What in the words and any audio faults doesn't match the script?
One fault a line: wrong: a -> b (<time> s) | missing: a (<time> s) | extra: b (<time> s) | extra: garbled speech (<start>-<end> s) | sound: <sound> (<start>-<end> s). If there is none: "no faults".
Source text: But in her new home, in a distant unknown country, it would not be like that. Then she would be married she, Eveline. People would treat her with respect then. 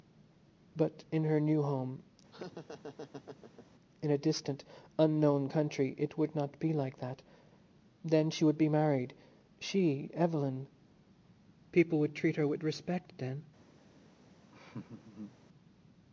sound: laugh (2.3-3.7 s)
sound: laugh (14.5-15.4 s)